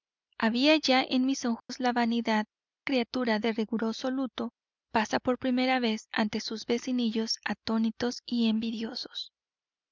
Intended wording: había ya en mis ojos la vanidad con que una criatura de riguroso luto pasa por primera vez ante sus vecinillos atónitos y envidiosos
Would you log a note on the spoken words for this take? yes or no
yes